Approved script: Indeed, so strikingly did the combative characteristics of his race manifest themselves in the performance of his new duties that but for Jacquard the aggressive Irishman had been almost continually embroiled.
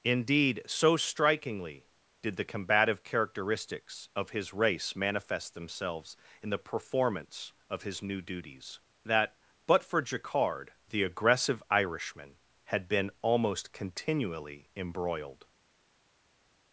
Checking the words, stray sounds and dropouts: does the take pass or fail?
pass